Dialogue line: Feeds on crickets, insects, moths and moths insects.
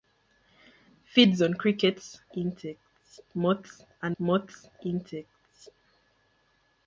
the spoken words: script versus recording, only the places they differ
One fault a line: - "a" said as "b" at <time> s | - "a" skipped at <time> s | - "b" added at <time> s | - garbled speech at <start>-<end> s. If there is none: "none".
none